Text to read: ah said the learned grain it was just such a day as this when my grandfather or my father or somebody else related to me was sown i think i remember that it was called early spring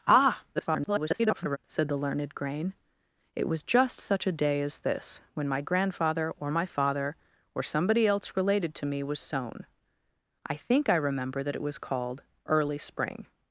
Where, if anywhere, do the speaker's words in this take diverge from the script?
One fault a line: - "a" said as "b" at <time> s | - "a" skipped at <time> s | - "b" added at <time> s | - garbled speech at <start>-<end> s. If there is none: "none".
- garbled speech at 0.6-1.6 s